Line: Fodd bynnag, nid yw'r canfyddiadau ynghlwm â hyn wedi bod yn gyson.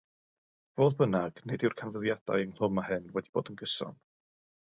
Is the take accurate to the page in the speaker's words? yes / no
yes